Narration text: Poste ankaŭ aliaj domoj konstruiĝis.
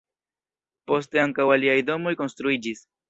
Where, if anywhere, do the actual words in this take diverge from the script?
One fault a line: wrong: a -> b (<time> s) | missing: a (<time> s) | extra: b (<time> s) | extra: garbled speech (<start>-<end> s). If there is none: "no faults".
no faults